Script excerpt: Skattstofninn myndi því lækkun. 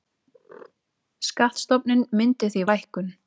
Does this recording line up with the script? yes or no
yes